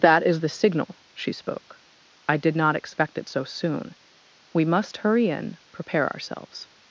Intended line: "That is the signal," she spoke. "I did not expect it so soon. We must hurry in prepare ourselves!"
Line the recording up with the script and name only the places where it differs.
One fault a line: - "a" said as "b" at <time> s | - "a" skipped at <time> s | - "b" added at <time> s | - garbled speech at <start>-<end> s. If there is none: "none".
none